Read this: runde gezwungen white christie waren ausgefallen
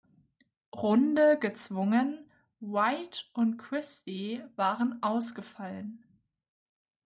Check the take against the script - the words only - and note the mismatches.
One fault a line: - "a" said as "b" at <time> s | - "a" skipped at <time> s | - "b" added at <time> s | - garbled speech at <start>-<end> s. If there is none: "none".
- "und" added at 3.4 s